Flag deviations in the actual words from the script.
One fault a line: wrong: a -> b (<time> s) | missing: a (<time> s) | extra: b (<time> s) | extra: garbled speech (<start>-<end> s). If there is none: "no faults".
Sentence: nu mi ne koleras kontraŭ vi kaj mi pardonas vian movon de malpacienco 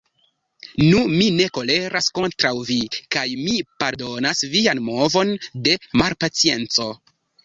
no faults